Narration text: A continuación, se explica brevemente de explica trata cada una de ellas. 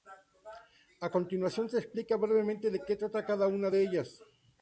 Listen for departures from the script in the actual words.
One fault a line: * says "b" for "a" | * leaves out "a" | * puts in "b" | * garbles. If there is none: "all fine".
* says "que" for "explica"